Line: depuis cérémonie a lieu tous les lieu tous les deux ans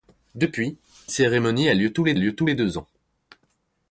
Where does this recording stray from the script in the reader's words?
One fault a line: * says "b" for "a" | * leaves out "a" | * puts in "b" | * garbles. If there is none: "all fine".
all fine